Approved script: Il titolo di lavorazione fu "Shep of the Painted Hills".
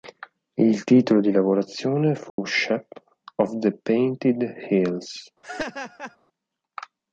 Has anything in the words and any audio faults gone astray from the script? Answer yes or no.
yes